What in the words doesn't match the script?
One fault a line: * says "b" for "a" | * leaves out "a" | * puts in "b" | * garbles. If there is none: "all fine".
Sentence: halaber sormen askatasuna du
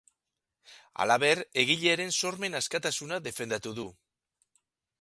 * puts in "egilearen"
* puts in "defendatu"